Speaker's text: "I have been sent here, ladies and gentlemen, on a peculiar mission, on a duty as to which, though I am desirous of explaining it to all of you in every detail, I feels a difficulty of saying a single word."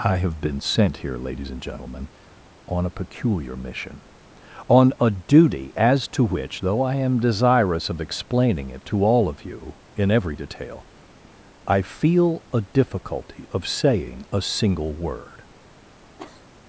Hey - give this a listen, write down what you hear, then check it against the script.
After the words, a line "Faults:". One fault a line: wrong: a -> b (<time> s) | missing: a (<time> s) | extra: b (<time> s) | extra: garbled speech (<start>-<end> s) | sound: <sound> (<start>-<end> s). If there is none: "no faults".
"I have been sent here, ladies and gentlemen, on a peculiar mission, on a duty as to which, though I am desirous of explaining it to all of you in every detail, I feel a difficulty of saying a single word."
Faults:
wrong: feels -> feel (11.8 s)
sound: cough (16.2-16.5 s)